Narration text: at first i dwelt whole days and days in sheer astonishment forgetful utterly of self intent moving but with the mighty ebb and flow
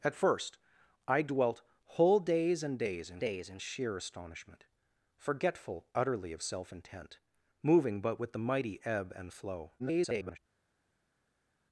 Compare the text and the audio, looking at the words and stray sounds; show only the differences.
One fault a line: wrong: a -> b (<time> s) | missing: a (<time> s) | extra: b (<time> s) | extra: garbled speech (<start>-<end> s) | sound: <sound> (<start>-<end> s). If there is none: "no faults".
extra: days in (3.2 s)
extra: garbled speech (9.8-10.4 s)